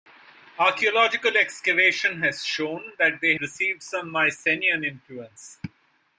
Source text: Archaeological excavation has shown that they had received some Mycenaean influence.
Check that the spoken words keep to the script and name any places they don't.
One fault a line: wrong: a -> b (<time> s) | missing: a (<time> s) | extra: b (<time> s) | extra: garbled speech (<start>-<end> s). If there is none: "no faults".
missing: had (3.4 s)